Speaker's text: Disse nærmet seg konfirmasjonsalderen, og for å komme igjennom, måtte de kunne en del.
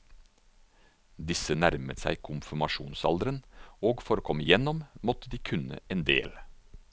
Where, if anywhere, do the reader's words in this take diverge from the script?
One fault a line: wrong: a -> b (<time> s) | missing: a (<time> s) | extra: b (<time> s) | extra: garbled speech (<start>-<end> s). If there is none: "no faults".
no faults